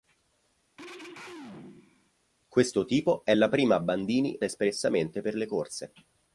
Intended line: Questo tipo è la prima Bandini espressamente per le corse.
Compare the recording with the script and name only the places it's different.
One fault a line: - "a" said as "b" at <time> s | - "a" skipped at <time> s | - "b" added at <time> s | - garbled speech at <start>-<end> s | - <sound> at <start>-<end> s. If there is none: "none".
- throat clearing at 0.8-2.1 s